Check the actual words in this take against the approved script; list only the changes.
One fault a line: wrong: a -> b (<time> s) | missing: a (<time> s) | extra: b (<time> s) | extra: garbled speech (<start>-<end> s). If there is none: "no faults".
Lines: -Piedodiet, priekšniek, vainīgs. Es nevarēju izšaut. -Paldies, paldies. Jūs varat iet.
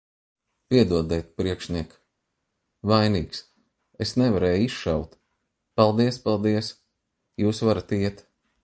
no faults